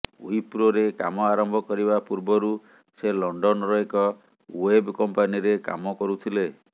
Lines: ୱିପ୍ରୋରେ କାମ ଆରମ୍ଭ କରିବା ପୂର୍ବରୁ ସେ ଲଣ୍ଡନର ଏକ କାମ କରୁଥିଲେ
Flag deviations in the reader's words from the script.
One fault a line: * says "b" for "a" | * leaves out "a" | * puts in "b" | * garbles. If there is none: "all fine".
* puts in "ୱେବ୍ କମ୍ପାନୀରେ"